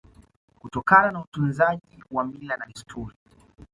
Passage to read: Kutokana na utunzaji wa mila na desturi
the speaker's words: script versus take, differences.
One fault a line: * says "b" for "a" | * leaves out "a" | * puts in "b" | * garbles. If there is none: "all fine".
all fine